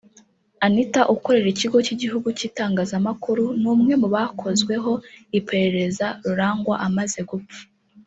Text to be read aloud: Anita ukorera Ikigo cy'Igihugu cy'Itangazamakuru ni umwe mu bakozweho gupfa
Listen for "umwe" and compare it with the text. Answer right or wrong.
right